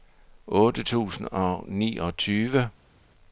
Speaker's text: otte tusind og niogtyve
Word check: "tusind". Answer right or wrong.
right